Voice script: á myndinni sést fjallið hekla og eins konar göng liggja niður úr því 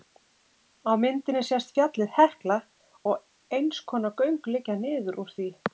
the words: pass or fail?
pass